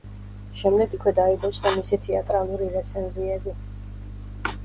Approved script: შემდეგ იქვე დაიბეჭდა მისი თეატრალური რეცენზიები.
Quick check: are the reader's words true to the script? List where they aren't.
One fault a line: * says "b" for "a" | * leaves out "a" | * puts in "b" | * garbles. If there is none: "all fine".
all fine